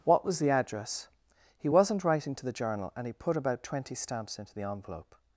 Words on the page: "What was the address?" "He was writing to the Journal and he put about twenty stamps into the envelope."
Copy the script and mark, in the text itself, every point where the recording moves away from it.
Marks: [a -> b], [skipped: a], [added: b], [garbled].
"What was the address?" "He [was -> wasn't] writing to the Journal and he put about twenty stamps into the envelope."